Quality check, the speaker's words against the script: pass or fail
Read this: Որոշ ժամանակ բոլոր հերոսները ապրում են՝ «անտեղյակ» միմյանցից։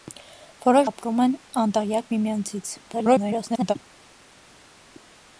fail